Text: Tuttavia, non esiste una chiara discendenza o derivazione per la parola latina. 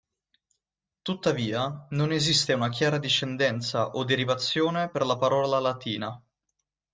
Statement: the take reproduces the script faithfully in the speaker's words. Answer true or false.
true